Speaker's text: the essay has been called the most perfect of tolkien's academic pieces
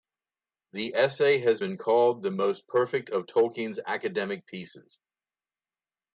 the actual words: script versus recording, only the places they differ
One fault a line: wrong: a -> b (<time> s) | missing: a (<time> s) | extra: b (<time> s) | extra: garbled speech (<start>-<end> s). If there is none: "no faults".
no faults